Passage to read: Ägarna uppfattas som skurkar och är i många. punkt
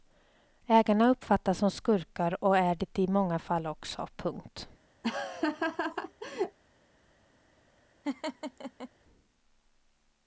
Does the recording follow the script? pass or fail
fail